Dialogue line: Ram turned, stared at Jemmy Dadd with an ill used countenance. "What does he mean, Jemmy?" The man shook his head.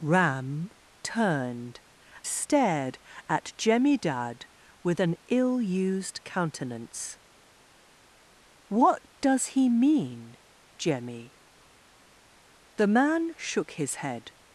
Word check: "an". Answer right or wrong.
right